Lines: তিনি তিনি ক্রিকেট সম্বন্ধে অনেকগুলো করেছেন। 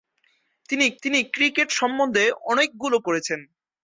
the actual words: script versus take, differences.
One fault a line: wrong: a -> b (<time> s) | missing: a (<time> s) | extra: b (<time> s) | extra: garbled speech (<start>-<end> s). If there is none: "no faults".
no faults